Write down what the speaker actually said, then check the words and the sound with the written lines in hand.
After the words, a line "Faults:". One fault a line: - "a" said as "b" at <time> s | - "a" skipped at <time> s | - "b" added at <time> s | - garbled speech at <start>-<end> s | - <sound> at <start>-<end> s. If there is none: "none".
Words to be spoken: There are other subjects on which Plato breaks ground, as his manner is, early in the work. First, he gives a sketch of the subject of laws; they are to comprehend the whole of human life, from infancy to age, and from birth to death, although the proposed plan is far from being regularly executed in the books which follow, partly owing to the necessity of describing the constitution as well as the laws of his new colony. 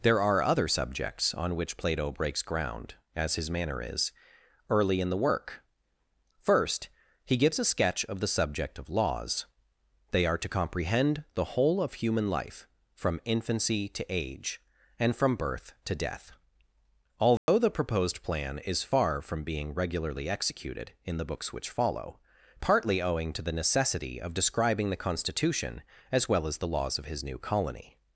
There are other subjects on which Plato breaks ground, as his manner is, early in the work. First, he gives a sketch of the subject of laws; they are to comprehend the whole of human life, from infancy to age, and from birth to death, although the proposed plan is far from being regularly executed in the books which follow, partly owing to the necessity of describing the constitution as well as the laws of his new colony.
Faults:
- dropout at 17.4-17.5 s